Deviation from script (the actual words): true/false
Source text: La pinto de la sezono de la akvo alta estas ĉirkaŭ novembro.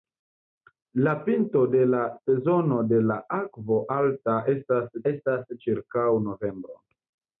true